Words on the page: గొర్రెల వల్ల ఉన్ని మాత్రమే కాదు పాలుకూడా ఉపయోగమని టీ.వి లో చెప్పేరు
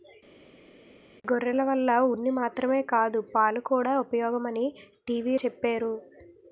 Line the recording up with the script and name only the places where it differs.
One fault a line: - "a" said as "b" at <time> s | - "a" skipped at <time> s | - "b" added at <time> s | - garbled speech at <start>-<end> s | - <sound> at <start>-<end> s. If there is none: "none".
- "లో" skipped at 5.4 s